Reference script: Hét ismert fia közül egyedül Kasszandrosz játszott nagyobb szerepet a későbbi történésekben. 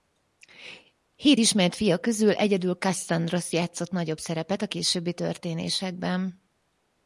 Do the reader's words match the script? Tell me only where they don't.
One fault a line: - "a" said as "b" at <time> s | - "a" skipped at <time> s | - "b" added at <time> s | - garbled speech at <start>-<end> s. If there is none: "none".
none